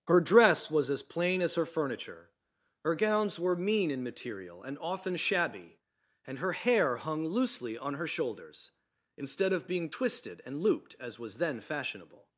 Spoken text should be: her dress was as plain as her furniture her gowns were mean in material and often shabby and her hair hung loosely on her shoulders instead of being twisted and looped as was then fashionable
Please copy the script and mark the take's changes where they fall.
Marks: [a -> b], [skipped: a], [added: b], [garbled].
her dress was as plain as her furniture her gowns were mean in material and often shabby and her hair hung loosely on her shoulders instead of being twisted and looped as was then fashionable